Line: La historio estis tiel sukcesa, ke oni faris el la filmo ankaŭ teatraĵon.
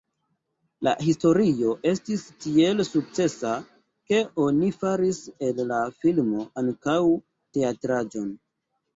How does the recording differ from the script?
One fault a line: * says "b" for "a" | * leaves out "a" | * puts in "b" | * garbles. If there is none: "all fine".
all fine